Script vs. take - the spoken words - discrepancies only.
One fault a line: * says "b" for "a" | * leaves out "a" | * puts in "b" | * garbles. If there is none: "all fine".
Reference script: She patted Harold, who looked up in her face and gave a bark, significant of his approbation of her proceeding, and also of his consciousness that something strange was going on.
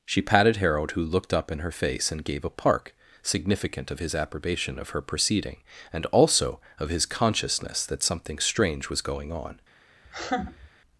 * says "park" for "bark"